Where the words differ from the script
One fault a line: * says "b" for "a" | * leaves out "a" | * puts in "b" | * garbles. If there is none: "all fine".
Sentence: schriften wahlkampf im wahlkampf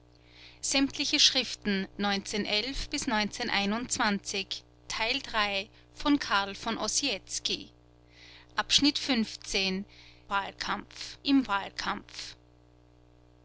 all fine